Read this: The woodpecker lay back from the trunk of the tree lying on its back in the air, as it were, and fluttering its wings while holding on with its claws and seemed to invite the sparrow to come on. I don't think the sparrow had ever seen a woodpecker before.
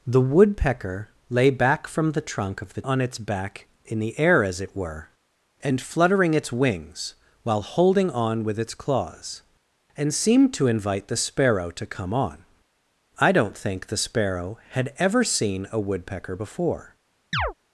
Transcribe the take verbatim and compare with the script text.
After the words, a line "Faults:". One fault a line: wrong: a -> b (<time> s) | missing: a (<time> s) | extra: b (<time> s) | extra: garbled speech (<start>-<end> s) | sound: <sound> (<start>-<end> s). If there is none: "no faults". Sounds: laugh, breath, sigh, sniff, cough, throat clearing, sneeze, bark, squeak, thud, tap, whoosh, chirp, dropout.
The woodpecker lay back from the trunk of the on its back in the air, as it were, and fluttering its wings while holding on with its claws and seemed to invite the sparrow to come on. I don't think the sparrow had ever seen a woodpecker before.
Faults:
missing: tree lying (2.8 s)
sound: chirp (17.3-17.5 s)